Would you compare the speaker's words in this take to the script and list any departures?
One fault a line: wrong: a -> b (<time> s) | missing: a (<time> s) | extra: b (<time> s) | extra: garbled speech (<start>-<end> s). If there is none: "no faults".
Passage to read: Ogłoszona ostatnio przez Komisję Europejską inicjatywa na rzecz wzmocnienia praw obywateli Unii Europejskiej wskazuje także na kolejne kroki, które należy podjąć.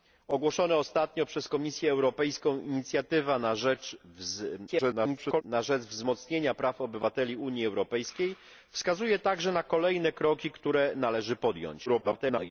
extra: garbled speech (4.7-5.4 s)
extra: garbled speech (11.9-12.5 s)